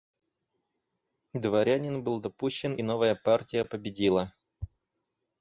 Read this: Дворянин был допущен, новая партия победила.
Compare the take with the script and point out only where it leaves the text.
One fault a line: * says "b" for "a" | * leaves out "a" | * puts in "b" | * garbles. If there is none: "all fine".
all fine